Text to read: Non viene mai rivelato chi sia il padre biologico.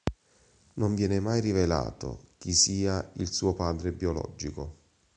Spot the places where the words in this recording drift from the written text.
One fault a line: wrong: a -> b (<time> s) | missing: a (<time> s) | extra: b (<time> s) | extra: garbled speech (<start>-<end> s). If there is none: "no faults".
extra: suo (3.3 s)